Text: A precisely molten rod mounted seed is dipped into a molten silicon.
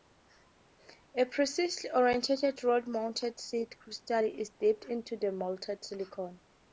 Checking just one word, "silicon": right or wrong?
right